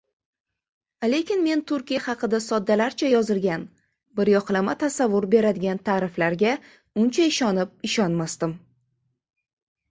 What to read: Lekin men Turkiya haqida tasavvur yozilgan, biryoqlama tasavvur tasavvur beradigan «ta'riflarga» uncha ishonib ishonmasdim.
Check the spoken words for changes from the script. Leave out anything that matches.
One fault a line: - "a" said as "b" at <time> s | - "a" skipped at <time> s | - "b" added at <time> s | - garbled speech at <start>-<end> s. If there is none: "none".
- "tasavvur" said as "soddalarcha" at 2.5 s
- "tasavvur" skipped at 5.3 s